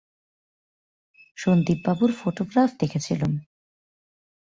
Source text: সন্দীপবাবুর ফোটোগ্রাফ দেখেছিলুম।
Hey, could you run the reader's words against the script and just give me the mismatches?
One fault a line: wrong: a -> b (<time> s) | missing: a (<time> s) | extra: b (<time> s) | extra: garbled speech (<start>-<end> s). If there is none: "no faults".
no faults